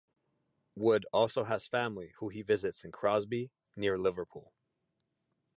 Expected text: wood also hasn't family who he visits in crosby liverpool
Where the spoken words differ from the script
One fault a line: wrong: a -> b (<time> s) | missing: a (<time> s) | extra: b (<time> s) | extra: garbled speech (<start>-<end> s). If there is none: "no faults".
wrong: hasn't -> has (1.4 s)
extra: near (3.7 s)